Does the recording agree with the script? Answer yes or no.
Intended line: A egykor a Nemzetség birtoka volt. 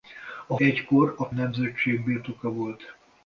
yes